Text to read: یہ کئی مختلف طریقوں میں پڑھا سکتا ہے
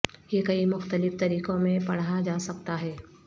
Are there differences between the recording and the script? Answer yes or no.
yes